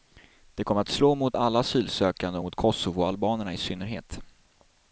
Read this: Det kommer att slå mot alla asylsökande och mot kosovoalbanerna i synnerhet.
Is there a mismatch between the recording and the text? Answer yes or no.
no